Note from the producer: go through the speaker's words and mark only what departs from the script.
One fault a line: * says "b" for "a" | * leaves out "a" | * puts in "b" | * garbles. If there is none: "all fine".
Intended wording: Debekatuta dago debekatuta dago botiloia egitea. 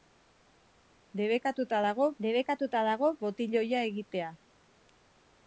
all fine